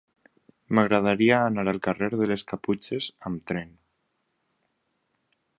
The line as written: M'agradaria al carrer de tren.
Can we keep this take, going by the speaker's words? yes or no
no